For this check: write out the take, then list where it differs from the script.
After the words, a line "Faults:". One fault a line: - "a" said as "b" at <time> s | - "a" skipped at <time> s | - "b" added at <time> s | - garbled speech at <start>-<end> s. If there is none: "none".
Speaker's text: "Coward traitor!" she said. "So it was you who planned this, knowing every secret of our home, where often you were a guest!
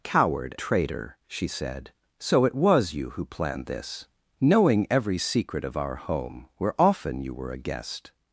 "Coward traitor!" she said. "So it was you who planned this, knowing every secret of our home, where often you were a guest!
Faults:
none